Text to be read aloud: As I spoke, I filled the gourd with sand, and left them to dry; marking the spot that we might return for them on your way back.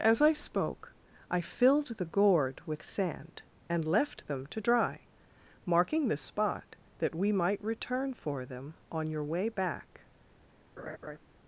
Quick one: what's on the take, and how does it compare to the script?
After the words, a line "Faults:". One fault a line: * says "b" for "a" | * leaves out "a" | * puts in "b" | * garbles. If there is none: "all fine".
As I spoke, I filled the gourd with sand, and left them to dry; marking the spot that we might return for them on your way back.
Faults:
all fine